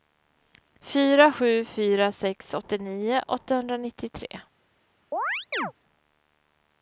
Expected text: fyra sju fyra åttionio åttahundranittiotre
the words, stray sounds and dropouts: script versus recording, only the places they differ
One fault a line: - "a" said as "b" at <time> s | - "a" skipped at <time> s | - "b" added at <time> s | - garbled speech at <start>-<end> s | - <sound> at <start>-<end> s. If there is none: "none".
- "sex" added at 2.1 s
- chirp at 5.1-5.7 s